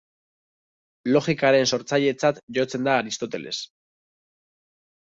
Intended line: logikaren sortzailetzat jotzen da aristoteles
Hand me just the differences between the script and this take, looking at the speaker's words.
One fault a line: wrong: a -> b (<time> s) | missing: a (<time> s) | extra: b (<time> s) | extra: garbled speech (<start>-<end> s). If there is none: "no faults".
no faults